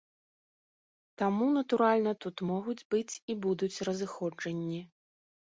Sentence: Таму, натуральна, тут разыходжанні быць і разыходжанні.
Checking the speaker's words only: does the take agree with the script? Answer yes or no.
no